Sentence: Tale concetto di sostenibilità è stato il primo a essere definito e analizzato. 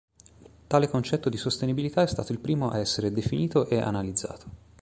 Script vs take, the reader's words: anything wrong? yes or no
no